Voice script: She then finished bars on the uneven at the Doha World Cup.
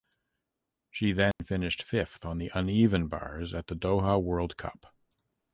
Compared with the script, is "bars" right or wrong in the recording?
wrong